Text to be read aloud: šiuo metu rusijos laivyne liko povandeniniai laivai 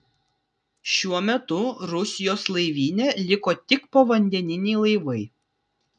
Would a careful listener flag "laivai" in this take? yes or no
no